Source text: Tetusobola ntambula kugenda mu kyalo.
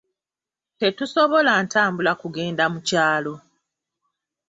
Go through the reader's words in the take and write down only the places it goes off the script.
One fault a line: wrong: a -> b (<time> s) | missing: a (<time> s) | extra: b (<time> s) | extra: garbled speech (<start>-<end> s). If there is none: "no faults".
no faults